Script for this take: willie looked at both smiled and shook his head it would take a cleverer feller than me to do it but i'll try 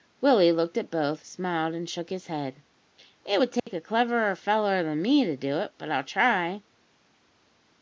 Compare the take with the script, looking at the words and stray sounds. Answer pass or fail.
fail